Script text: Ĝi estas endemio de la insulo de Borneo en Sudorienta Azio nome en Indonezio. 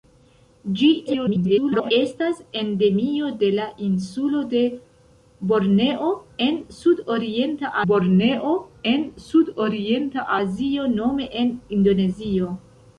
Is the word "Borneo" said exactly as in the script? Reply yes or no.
yes